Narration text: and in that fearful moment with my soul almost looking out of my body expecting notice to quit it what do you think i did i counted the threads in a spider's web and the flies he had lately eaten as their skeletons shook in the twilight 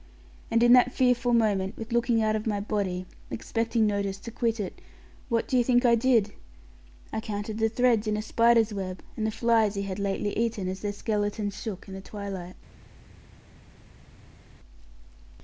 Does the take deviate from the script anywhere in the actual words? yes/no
yes